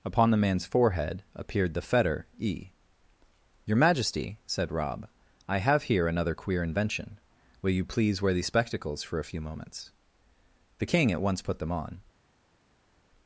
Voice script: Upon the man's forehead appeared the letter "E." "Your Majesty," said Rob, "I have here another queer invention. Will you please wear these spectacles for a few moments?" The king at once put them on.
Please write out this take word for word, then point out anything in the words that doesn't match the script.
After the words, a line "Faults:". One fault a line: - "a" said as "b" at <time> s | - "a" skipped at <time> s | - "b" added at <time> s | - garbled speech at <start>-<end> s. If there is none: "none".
Upon the man's forehead appeared the fetter "E." "Your Majesty," said Rob, "I have here another queer invention. Will you please wear these spectacles for a few moments?" The king at once put them on.
Faults:
- "letter" said as "fetter" at 1.8 s